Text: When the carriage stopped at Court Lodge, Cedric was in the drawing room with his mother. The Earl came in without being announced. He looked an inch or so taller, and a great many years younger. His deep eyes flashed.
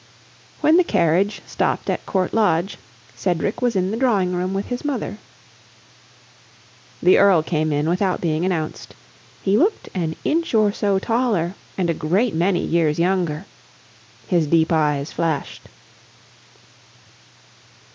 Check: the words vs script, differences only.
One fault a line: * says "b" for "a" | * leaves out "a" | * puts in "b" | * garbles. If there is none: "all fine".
all fine